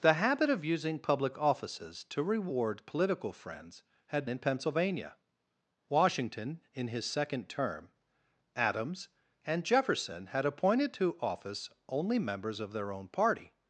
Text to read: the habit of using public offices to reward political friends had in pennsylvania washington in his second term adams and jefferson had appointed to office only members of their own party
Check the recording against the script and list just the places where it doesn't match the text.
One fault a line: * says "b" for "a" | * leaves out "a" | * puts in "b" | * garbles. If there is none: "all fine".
all fine